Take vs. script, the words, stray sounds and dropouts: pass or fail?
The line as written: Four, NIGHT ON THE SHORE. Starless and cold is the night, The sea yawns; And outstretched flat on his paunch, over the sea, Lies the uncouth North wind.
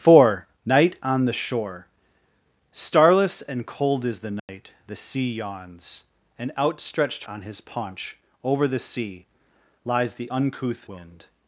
fail